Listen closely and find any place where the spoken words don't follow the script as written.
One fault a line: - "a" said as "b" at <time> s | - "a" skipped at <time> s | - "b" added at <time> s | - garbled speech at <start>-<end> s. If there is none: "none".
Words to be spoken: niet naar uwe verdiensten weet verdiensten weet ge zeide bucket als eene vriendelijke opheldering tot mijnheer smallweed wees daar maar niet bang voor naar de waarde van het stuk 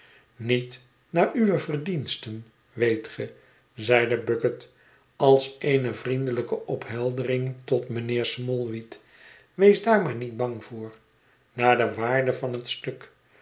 - "verdiensten weet" skipped at 3.1 s